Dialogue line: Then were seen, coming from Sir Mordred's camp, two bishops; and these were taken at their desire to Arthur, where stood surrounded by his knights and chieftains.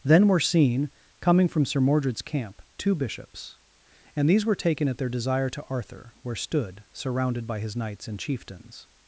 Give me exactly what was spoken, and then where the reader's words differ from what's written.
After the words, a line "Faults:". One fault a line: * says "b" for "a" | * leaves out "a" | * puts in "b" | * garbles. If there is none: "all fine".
Then were seen, coming from Sir Mordred's camp, two bishops; and these were taken at their desire to Arthur, where stood surrounded by his knights and chieftains.
Faults:
all fine